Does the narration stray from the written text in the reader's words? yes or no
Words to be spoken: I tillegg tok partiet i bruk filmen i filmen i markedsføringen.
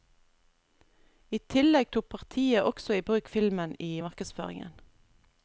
yes